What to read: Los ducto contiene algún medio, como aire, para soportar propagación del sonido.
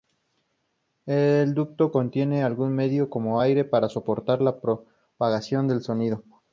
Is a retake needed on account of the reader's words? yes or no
yes